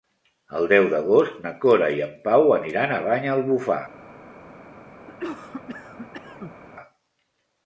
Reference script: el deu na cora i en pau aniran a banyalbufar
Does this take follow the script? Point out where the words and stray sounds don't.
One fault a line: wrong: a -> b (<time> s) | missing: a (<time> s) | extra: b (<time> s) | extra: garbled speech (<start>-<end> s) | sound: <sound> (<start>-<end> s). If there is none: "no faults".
extra: d'agost (0.9 s)
sound: cough (5.1-6.6 s)